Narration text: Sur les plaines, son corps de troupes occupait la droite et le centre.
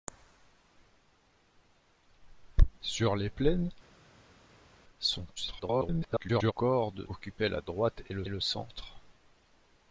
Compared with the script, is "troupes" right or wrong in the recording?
wrong